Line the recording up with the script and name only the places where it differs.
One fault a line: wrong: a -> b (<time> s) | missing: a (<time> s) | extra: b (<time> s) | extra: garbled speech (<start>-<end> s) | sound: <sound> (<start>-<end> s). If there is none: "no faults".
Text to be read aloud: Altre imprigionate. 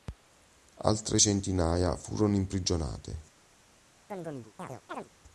extra: centinaia furono (1.2 s)
sound: chirp (4.1-5.1 s)